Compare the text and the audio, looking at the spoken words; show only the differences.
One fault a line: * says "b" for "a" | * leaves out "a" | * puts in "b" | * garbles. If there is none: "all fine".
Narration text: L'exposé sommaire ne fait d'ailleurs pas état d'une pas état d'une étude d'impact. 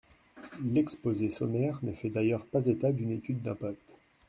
* leaves out "pas état d'une"